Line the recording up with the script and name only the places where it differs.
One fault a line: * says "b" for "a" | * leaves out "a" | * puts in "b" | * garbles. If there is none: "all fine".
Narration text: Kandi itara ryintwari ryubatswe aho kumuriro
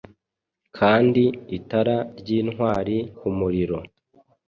* leaves out "ryubatswe aho"